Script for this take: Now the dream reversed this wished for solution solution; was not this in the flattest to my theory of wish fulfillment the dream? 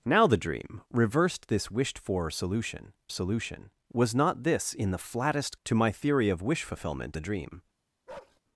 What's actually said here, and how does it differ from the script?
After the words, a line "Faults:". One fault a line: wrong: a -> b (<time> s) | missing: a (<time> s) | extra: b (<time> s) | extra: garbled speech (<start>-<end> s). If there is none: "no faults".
Now the dream reversed this wished for solution solution; was not this in the flattest to my theory of wish fulfillment the dream?
Faults:
no faults